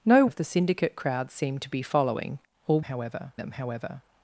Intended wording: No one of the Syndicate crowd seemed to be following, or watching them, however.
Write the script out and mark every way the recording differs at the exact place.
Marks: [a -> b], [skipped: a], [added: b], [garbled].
No [skipped: one] of the Syndicate crowd seemed to be following, or [watching -> however] them, however.